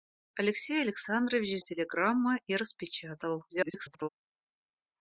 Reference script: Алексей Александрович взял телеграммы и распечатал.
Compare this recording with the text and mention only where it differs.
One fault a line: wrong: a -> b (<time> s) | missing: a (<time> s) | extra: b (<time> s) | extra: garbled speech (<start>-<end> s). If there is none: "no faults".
missing: взял (1.6 s)
extra: garbled speech (3.5-4.1 s)